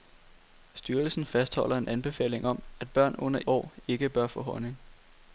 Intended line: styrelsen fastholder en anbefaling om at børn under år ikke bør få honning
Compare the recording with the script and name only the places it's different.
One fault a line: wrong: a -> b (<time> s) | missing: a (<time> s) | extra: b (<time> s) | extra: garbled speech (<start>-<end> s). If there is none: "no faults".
no faults